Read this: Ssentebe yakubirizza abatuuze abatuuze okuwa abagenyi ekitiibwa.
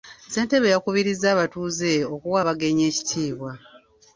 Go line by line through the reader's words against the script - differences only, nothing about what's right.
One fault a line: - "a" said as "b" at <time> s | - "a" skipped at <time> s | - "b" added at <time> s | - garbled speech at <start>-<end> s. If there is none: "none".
- "abatuuze" skipped at 1.9 s